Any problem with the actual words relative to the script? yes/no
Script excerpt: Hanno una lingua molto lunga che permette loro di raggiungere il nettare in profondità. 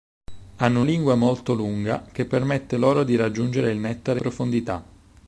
yes